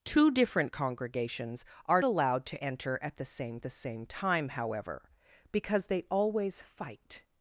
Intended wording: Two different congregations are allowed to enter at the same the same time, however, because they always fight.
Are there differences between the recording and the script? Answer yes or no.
no